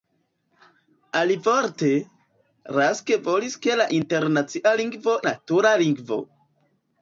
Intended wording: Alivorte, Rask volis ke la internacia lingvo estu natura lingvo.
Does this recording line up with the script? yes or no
no